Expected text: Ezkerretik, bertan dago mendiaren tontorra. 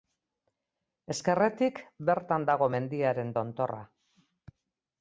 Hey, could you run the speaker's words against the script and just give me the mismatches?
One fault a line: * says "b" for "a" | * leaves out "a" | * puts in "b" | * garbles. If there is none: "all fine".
all fine